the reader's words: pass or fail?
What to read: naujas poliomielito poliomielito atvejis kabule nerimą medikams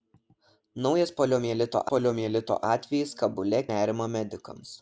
pass